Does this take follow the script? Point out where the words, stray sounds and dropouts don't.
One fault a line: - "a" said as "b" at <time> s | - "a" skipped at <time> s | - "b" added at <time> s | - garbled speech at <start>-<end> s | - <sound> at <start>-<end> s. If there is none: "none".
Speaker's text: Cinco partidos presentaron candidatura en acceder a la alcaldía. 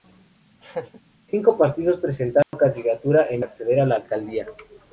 - laugh at 0.6-1.0 s
- dropout at 2.4-2.5 s